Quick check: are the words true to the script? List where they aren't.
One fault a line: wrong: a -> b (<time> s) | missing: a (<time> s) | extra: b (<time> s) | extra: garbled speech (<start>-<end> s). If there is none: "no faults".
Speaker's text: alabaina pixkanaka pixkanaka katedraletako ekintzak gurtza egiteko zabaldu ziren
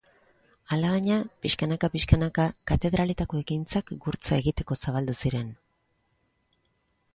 no faults